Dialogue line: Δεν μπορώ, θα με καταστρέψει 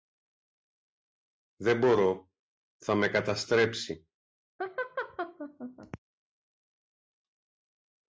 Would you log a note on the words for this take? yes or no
no